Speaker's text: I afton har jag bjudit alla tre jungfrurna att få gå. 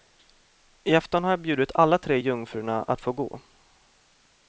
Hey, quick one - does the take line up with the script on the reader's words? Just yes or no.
yes